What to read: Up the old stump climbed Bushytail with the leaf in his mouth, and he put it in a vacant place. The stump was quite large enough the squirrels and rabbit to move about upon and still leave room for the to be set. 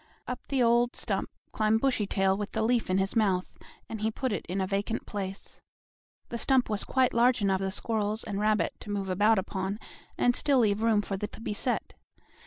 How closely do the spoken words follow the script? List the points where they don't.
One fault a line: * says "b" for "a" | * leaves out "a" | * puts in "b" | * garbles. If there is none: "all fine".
all fine